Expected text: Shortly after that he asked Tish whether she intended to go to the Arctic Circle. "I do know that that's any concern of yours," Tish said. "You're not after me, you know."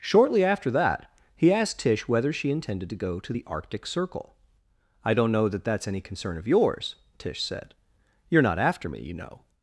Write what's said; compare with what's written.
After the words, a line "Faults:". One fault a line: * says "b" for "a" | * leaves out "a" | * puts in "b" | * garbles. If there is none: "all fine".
Shortly after that he asked Tish whether she intended to go to the Arctic Circle. "I don't know that that's any concern of yours," Tish said. "You're not after me, you know."
Faults:
* says "don't" for "do"